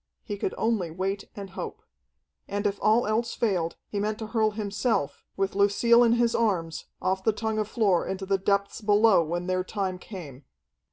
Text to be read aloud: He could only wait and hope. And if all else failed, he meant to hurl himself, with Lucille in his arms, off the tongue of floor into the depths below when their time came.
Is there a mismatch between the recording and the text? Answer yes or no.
no